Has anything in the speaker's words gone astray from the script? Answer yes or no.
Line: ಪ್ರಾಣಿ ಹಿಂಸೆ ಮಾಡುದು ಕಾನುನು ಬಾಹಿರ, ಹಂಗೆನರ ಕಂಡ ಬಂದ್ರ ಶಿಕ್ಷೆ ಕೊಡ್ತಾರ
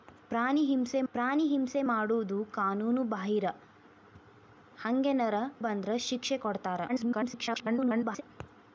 yes